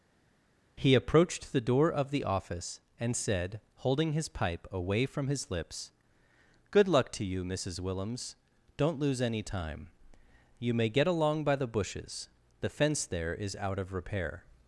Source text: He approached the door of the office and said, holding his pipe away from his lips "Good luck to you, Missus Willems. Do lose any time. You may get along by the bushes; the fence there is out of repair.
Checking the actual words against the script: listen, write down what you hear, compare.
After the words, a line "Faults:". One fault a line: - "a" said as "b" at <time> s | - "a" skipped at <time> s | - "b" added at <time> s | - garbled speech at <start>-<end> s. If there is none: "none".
He approached the door of the office and said, holding his pipe away from his lips "Good luck to you, Missus Willems. Don't lose any time. You may get along by the bushes; the fence there is out of repair.
Faults:
- "Do" said as "Don't" at 8.8 s